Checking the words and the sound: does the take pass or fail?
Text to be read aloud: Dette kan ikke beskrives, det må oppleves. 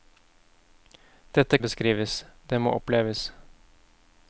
fail